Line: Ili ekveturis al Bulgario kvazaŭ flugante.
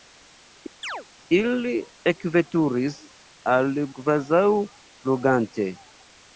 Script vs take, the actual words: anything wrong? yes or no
yes